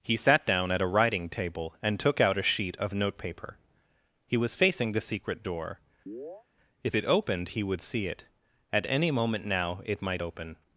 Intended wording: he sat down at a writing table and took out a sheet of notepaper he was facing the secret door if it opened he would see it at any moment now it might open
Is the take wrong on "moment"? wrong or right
right